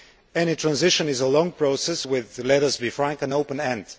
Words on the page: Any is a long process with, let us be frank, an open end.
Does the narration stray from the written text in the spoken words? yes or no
yes